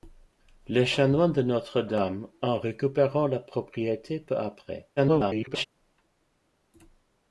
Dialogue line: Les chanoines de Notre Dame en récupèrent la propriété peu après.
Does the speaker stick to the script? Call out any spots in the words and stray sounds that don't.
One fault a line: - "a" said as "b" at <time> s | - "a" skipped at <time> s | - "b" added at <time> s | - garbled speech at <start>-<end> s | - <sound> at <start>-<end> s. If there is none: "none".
- garbled speech at 5.0-5.7 s